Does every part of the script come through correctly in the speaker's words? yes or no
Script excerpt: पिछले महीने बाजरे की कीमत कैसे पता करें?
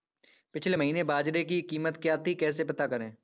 no